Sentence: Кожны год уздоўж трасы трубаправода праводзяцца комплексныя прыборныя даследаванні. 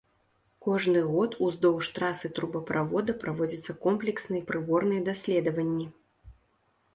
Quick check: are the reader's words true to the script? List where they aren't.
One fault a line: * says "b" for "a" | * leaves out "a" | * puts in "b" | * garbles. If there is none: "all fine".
all fine